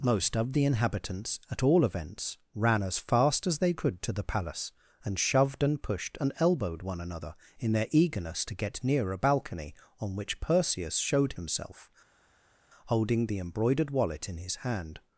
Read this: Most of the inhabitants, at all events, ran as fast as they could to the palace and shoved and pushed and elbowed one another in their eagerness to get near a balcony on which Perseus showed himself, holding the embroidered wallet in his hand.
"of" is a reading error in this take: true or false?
false